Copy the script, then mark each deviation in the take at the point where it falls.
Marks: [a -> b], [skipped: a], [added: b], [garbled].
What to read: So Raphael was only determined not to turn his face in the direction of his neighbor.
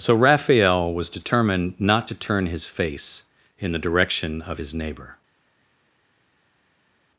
So Raphael was [skipped: only] determined not to turn his face in the direction of his neighbor.